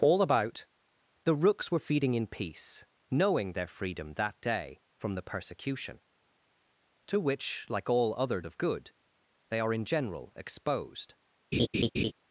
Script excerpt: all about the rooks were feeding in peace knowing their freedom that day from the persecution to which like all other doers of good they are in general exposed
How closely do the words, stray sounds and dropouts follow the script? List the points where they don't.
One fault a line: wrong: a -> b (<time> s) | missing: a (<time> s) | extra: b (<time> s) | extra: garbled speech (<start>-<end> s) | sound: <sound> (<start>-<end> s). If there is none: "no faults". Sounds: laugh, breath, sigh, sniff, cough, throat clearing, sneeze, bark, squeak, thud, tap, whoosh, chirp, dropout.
missing: doers (8.4 s)
sound: laugh (11.5-12.1 s)